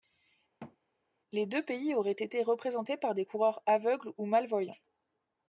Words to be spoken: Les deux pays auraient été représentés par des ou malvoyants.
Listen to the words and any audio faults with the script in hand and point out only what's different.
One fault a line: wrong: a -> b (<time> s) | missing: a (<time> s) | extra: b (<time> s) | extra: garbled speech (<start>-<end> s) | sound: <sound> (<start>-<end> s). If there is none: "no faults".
sound: thud (0.6-0.8 s)
extra: coureurs aveugles (3.2 s)